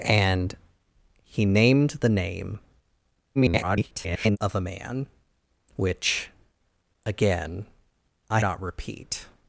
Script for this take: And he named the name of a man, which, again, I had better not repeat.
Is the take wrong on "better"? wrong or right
wrong